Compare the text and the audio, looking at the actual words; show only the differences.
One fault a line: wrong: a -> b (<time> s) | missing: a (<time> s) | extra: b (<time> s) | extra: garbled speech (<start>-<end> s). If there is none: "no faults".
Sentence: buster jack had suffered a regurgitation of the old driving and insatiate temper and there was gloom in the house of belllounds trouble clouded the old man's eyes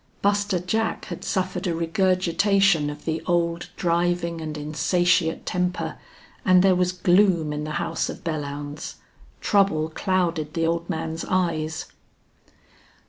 no faults